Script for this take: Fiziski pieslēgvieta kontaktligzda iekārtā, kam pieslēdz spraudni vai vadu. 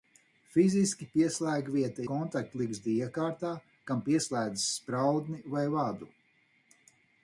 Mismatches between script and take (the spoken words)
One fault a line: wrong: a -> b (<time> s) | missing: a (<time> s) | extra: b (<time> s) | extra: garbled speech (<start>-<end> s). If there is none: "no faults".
no faults